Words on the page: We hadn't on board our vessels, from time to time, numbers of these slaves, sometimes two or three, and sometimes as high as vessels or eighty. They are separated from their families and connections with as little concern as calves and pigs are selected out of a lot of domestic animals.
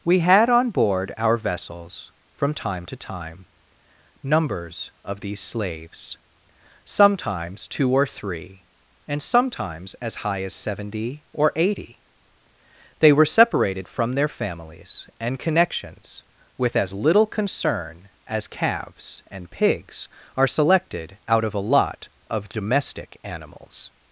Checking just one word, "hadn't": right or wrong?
wrong